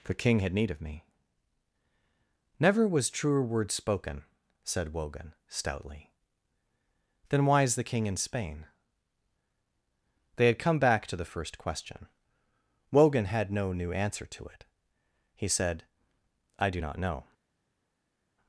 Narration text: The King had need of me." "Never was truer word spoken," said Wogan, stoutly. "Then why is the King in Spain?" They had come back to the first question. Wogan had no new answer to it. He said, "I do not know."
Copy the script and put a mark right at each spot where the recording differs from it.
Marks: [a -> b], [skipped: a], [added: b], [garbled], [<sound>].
The King had need of me." "Never was truer word spoken," said Wogan, stoutly. "Then why is the King in Spain?" They had come back to the first question. Wogan had no new answer to it. He said, "I do not know."